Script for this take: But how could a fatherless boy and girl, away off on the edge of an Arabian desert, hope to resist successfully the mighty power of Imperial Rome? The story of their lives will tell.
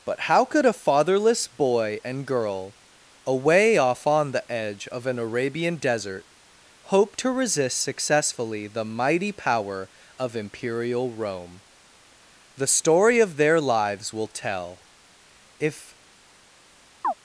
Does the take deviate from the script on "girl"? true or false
false